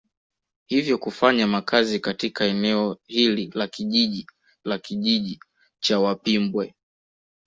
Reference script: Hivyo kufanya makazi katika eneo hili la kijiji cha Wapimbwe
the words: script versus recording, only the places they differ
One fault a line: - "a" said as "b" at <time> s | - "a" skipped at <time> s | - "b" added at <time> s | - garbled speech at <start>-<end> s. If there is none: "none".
- "la kijiji" added at 4.7 s